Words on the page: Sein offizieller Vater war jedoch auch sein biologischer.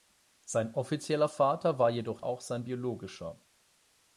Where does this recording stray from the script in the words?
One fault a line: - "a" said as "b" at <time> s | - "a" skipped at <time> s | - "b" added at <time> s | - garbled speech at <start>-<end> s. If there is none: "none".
none